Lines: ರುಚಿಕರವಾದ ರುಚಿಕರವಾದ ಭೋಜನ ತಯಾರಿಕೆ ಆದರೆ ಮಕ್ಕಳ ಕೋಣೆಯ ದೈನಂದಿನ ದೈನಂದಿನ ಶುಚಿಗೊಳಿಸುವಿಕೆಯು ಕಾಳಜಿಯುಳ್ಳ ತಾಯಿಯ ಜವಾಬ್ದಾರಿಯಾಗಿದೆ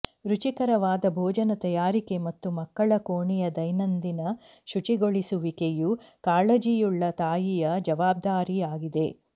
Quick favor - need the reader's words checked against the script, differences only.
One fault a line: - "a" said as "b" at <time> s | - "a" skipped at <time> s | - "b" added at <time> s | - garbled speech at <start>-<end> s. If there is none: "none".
- "ರುಚಿಕರವಾದ" skipped at 1.1 s
- "ಆದರೆ" said as "ಮತ್ತು" at 2.2 s
- "ದೈನಂದಿನ" skipped at 4.2 s